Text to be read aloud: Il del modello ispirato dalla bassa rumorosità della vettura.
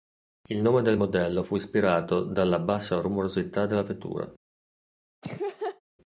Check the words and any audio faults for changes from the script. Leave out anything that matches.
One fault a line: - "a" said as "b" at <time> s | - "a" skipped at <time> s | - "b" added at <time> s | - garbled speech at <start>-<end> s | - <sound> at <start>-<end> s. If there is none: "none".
- "nome" added at 0.6 s
- "fu" added at 1.4 s
- laugh at 5.2-5.8 s